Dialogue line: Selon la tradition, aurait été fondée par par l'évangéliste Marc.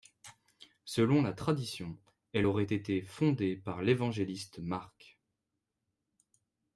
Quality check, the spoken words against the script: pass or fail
fail